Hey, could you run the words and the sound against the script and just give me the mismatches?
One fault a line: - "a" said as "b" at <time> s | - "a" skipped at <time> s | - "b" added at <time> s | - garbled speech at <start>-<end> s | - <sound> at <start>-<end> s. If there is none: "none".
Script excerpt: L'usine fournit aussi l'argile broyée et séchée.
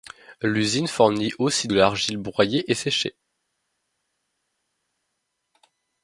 none